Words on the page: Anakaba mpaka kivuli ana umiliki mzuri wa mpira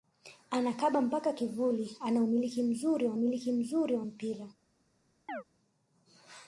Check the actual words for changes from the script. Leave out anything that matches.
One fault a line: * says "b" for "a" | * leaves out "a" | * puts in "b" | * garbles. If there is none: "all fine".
* puts in "umiliki mzuri wa"